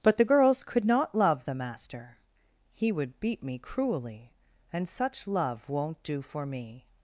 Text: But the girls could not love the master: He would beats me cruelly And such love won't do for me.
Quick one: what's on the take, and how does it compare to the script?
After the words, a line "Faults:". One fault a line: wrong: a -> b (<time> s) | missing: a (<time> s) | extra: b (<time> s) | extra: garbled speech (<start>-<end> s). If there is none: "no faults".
But the girls could not love the master: He would beat me cruelly And such love won't do for me.
Faults:
wrong: beats -> beat (3.2 s)